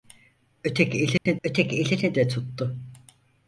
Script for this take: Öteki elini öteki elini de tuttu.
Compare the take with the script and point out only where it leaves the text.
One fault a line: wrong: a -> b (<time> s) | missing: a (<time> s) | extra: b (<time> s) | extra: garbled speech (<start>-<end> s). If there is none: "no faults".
no faults